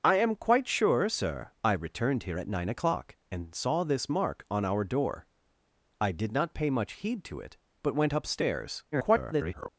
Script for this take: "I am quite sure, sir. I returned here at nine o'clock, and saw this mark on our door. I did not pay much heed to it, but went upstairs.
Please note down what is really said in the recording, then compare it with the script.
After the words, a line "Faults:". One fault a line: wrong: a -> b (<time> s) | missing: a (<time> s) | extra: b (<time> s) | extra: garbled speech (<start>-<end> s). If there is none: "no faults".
"I am quite sure, sir. I returned here at nine o'clock, and saw this mark on our door. I did not pay much heed to it, but went upstairs. [garbled]
Faults:
extra: garbled speech (8.9-9.7 s)